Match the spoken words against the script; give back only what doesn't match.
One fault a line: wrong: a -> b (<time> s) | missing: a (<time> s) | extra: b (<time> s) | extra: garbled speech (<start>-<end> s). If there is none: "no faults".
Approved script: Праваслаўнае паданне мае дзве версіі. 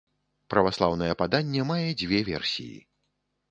no faults